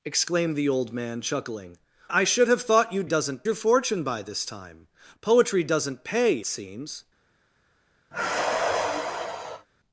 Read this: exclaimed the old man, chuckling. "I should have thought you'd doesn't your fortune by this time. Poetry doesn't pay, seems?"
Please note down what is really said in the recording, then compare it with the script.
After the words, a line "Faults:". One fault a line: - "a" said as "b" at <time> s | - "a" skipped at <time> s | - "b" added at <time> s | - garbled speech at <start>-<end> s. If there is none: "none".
exclaimed the old man, chuckling. "I should have thought you'd doesn't your fortune by this time. Poetry doesn't pay, seems?"
Faults:
none